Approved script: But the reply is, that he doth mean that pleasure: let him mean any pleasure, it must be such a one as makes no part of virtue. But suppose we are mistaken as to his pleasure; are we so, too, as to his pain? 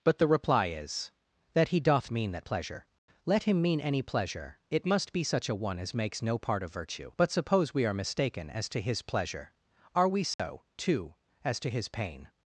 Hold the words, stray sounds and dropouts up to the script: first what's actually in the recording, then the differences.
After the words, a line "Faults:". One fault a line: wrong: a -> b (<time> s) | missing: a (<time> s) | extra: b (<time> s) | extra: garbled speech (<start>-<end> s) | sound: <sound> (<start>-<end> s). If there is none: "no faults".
But the reply is, that he doth mean that pleasure: let him mean any pleasure, it must be such a one as makes no part of virtue. But suppose we are mistaken as to his pleasure; are we so, too, as to his pain?
Faults:
sound: dropout (10.3-10.4 s)